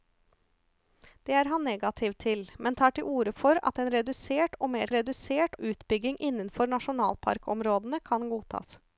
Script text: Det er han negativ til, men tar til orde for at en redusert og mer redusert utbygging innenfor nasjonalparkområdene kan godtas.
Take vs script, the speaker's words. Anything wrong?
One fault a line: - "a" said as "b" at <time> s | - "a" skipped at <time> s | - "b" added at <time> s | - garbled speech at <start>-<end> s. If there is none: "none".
none